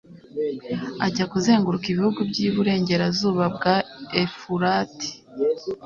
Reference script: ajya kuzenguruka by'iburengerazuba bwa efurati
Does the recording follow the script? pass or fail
fail